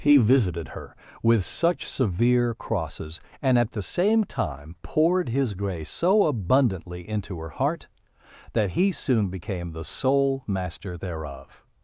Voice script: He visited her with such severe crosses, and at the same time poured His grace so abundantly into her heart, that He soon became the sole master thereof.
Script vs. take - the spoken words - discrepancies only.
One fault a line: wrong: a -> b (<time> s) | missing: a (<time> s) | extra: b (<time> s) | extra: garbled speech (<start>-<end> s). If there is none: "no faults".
no faults